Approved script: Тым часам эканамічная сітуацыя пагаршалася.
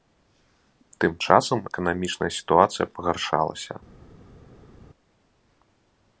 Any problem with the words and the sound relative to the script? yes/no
no